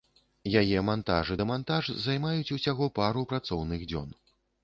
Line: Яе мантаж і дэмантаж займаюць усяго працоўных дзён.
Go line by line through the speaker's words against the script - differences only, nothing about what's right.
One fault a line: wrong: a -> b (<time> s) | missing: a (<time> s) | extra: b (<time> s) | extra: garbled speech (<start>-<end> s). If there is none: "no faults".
extra: пару (3.0 s)